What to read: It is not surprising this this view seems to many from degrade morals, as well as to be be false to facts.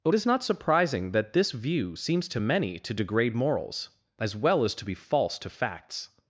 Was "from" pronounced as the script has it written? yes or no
no